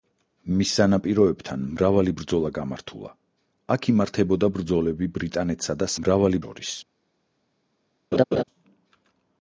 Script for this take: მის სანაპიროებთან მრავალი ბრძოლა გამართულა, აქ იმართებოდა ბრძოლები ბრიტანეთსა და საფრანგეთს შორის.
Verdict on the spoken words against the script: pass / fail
fail